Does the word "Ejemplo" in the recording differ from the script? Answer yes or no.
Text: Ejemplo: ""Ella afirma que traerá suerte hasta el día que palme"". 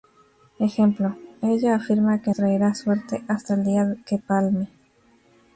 no